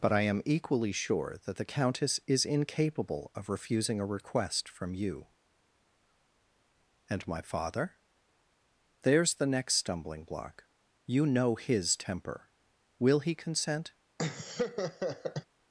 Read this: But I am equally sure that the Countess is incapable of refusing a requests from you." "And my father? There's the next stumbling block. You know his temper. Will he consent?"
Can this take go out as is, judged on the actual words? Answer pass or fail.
fail